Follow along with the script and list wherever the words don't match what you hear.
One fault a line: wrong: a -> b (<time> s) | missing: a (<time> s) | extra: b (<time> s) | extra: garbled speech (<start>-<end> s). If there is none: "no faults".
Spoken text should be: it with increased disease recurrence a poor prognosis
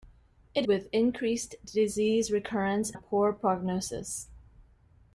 no faults